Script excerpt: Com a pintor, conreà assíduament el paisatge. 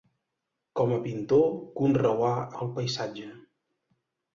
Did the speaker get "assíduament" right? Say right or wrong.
wrong